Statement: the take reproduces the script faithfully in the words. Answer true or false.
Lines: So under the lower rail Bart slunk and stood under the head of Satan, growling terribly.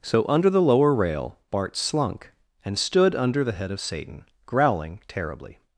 true